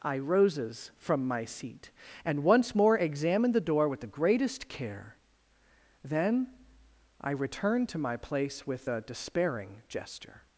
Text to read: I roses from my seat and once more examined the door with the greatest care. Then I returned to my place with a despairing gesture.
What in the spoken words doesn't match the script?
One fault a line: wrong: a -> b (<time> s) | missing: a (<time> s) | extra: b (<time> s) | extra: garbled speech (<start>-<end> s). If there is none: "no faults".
no faults